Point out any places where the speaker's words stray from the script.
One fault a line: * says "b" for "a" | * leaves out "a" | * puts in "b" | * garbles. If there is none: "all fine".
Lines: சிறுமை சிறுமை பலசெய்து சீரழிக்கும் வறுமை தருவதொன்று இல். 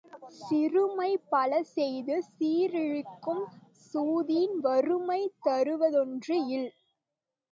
* leaves out "சிறுமை"
* puts in "சூதின்"